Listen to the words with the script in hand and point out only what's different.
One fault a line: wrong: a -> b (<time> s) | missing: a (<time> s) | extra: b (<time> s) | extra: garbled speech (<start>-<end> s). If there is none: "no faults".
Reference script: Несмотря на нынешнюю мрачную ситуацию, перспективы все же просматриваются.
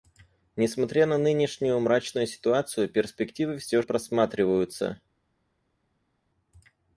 missing: же (3.8 s)